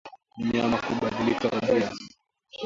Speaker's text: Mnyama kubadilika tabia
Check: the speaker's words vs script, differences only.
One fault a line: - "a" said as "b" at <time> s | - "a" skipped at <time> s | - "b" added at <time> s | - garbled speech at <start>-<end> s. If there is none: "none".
none